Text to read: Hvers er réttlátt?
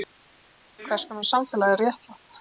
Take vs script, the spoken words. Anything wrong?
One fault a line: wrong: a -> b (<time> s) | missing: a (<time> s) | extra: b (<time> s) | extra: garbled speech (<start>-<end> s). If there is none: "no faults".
extra: konar samfélag (1.1 s)